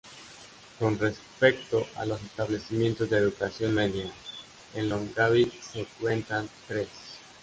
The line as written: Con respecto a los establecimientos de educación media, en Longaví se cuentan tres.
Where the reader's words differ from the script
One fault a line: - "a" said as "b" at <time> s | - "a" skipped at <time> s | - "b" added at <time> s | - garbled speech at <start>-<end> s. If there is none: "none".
none